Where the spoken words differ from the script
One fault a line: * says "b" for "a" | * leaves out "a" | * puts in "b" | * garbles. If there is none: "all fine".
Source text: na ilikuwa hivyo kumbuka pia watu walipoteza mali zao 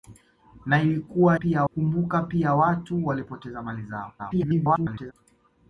* says "pia" for "hivyo"
* garbles